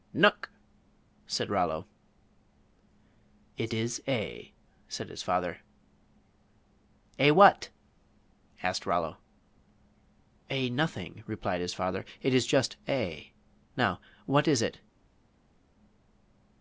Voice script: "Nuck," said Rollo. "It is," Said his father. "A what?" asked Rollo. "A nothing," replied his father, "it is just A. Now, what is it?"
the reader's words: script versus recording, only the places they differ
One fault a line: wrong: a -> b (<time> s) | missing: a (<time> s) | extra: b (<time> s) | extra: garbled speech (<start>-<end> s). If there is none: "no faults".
extra: A (4.1 s)